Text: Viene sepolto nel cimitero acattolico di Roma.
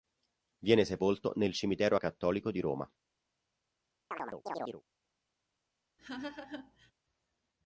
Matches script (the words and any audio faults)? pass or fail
fail